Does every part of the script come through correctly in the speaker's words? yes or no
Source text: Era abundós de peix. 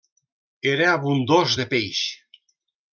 yes